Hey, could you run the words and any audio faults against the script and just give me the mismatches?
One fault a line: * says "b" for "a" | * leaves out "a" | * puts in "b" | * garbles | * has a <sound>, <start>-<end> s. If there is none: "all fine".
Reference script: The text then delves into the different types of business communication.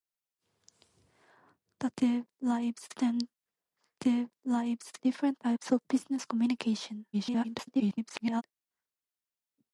* says "delves" for "text"
* leaves out "into the"
* garbles